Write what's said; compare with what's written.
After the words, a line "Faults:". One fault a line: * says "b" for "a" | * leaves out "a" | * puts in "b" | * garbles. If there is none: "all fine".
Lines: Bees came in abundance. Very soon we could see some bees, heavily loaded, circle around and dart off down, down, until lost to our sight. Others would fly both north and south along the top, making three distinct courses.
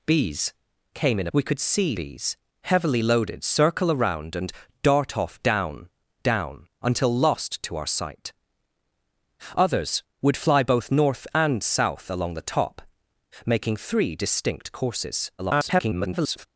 Bees came in we could see bees, heavily loaded, circle around and dart off down, down, until lost to our sight. Others would fly both north and south along the top, making three distinct courses. [garbled]
Faults:
* leaves out "abundance Very soon"
* leaves out "some"
* garbles